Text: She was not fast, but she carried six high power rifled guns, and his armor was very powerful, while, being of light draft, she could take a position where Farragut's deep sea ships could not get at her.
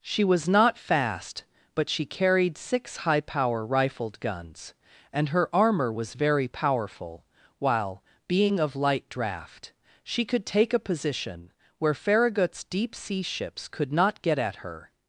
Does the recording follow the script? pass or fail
fail